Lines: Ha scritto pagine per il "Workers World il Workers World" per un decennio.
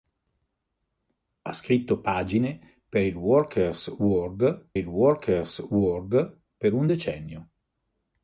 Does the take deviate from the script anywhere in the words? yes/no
no